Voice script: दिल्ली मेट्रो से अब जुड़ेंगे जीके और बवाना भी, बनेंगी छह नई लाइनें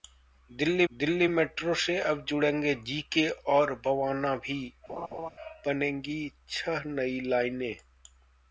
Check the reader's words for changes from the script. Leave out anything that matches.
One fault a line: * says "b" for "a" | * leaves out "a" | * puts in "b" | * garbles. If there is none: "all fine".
* puts in "दिल्ली"